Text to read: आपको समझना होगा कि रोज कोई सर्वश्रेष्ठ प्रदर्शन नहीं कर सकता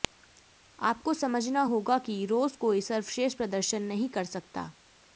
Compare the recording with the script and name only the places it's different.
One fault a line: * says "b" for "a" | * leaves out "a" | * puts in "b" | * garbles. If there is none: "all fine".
all fine